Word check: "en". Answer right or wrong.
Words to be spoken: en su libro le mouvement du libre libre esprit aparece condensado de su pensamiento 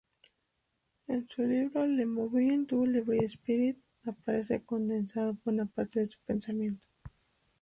right